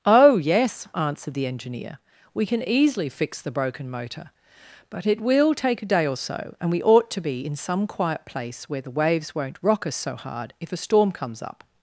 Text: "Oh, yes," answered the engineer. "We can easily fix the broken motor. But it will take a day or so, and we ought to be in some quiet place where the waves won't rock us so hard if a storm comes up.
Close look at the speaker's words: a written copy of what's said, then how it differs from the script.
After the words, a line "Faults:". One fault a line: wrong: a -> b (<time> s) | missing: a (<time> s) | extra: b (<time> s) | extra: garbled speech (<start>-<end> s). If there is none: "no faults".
"Oh, yes," answered the engineer. "We can easily fix the broken motor. But it will take a day or so, and we ought to be in some quiet place where the waves won't rock us so hard if a storm comes up.
Faults:
no faults